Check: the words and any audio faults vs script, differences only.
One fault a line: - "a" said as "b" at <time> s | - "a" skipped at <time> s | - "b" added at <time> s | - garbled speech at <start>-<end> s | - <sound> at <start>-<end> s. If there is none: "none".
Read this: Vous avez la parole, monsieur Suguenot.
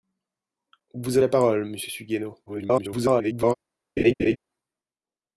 - "avez" skipped at 1.2 s
- garbled speech at 2.5-3.5 s
- laugh at 4.0-4.4 s